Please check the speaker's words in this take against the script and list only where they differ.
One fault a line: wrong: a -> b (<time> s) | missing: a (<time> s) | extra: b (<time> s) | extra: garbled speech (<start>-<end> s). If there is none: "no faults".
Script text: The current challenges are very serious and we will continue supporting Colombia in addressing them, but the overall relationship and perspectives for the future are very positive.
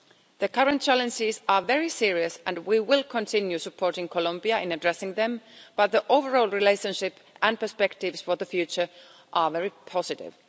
no faults